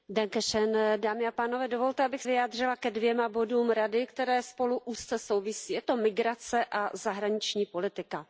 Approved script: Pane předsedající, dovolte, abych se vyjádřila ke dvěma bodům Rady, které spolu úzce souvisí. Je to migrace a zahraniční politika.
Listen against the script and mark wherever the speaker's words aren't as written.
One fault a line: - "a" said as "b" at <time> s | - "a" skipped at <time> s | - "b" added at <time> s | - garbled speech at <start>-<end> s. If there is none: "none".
- "se" skipped at 2.2 s